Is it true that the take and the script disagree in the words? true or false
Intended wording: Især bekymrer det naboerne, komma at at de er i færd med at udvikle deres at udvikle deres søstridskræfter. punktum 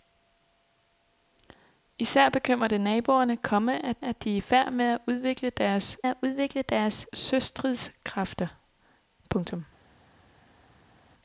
false